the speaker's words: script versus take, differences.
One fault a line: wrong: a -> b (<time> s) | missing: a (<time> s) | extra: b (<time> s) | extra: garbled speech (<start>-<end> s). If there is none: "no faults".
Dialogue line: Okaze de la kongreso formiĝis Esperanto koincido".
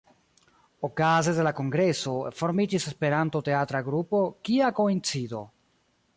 extra: teatra grupo Kia (3.5 s)